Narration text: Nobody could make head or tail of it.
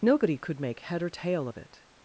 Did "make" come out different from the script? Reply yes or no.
no